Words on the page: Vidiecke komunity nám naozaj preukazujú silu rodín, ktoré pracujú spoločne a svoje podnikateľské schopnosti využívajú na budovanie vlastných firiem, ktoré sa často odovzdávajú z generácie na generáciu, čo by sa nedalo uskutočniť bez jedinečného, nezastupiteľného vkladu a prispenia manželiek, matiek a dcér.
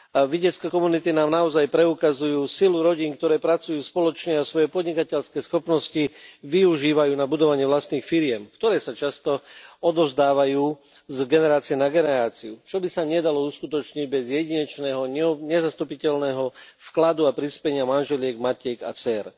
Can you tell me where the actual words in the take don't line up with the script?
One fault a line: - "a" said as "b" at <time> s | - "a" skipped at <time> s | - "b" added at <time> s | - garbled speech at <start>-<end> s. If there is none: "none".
none